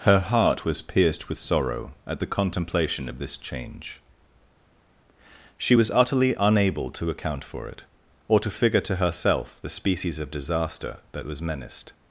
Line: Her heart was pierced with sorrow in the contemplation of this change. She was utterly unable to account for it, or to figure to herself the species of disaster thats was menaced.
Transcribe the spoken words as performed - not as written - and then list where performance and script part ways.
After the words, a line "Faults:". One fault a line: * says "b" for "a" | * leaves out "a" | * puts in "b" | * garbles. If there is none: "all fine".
Her heart was pierced with sorrow at the contemplation of this change. She was utterly unable to account for it, or to figure to herself the species of disaster that was menaced.
Faults:
* says "at" for "in"
* says "that" for "thats"